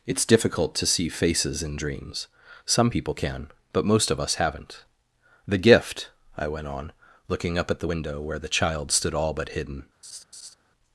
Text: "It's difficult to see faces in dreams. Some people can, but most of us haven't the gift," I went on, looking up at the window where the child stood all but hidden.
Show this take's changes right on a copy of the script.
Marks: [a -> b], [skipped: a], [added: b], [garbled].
"It's difficult to see faces in dreams. Some people can, but most of us haven't the gift," I went on, looking up at the window where the child stood all but hidden.